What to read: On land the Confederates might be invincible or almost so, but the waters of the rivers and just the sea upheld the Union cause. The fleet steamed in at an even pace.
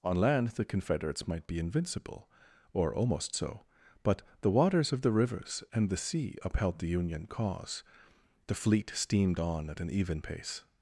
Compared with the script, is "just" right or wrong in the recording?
wrong